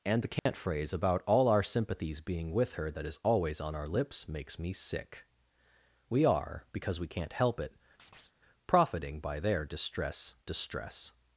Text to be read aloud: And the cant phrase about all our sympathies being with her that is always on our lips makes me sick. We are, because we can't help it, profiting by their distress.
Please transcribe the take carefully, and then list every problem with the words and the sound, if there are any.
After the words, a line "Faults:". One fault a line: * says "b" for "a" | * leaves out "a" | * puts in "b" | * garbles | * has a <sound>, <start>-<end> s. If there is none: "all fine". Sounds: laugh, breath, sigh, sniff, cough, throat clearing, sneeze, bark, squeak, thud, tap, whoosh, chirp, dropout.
And the cant phrase about all our sympathies being with her that is always on our lips makes me sick. We are, because we can't help it, profiting by their distress distress.
Faults:
* has a dropout, 0.4-0.5 s
* has a chirp, 8.0-8.4 s
* puts in "distress"